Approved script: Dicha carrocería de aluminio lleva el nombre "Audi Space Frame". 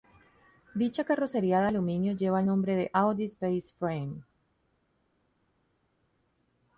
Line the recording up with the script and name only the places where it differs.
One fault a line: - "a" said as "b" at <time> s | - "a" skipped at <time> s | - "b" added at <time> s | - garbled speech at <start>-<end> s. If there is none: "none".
- "de" added at 2.8 s